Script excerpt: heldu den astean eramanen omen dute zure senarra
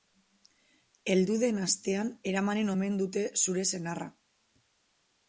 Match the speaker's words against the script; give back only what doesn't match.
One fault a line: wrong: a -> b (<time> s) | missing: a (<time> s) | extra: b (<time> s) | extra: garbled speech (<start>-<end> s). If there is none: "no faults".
no faults